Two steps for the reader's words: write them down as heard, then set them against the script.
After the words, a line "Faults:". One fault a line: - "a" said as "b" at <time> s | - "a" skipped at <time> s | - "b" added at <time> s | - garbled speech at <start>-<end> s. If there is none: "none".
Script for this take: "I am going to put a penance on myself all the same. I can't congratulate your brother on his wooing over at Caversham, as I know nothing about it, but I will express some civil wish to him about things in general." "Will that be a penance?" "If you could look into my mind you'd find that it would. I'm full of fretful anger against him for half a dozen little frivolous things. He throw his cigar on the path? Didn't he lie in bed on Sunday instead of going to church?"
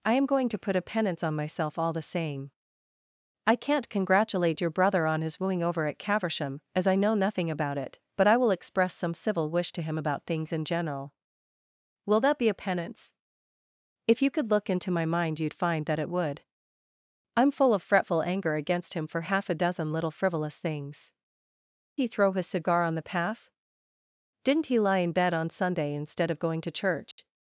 "I am going to put a penance on myself all the same. I can't congratulate your brother on his wooing over at Caversham, as I know nothing about it, but I will express some civil wish to him about things in general." "Will that be a penance?" "If you could look into my mind you'd find that it would. I'm full of fretful anger against him for half a dozen little frivolous things. He throw his cigar on the path? Didn't he lie in bed on Sunday instead of going to church?"
Faults:
none